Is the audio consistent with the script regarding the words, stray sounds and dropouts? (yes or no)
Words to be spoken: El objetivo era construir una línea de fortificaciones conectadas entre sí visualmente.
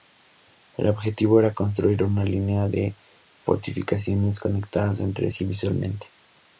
yes